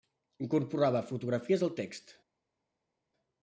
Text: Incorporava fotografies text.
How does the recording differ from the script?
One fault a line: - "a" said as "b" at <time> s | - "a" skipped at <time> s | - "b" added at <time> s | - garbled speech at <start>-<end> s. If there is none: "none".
- "al" added at 1.6 s